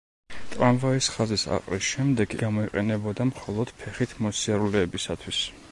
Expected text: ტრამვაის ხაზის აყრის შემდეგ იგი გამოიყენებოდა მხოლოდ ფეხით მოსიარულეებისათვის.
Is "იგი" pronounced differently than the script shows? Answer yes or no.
yes